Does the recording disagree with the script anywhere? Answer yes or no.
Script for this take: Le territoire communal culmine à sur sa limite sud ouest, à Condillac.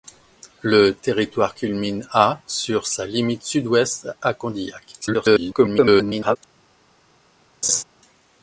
yes